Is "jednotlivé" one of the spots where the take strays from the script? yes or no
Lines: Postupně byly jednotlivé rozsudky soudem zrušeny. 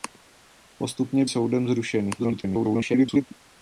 yes